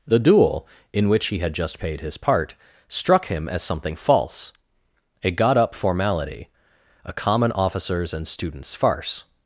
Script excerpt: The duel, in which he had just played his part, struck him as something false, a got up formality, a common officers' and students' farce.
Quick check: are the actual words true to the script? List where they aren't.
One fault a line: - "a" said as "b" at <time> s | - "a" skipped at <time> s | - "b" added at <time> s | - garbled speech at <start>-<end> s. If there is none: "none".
- "played" said as "paid" at 1.8 s